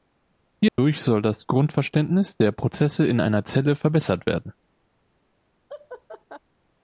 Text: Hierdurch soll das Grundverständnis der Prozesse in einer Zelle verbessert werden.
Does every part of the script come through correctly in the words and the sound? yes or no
no